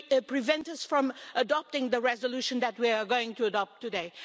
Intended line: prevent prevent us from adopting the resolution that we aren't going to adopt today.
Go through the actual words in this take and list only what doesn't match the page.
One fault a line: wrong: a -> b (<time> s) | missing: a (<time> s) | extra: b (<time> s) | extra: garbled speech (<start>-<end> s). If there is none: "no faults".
missing: prevent (0.7 s)
wrong: aren't -> are (2.9 s)